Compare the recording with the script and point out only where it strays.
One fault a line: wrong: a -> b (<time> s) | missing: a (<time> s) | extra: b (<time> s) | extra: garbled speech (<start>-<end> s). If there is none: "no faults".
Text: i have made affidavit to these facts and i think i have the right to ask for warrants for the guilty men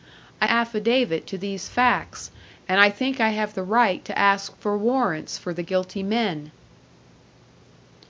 missing: have made (0.5 s)